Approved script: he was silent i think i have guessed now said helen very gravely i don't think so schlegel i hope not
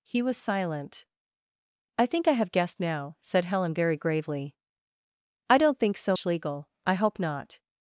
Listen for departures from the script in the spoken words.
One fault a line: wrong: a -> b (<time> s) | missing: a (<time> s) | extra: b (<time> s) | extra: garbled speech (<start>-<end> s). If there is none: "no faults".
no faults